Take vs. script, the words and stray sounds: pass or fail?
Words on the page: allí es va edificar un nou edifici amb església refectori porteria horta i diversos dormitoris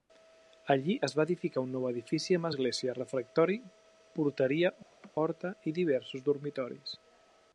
fail